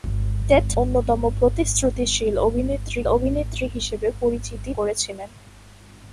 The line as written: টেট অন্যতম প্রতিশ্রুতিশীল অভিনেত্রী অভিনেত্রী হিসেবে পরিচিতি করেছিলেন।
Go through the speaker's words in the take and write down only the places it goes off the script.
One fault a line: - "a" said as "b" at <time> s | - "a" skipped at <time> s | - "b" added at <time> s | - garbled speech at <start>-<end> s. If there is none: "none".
none